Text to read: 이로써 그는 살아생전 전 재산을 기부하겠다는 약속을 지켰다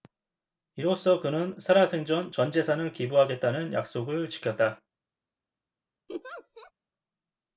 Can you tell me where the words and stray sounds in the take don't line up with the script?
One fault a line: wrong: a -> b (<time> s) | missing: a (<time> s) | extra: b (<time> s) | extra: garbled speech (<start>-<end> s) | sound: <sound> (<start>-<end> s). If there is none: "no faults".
sound: laugh (6.1-6.7 s)